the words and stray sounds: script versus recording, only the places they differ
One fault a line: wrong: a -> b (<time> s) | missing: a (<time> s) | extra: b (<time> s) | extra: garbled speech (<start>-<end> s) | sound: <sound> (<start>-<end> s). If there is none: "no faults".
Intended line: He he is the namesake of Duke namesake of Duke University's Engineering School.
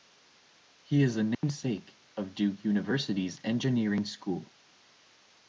missing: he (1.0 s)
sound: dropout (1.3-1.4 s)
missing: namesake of Duke (2.6 s)